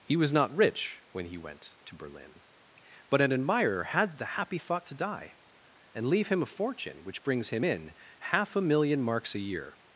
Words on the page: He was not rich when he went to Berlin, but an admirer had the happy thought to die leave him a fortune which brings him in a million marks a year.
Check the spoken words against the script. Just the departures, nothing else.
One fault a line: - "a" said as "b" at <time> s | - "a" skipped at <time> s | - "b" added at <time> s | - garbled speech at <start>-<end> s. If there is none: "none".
- "and" added at 5.9 s
- "half" added at 8.2 s